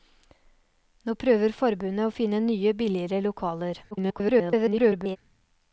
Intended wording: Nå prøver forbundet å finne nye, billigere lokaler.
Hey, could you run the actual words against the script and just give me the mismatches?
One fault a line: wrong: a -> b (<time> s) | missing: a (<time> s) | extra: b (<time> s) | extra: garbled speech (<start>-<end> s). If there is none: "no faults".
extra: garbled speech (3.9-5.2 s)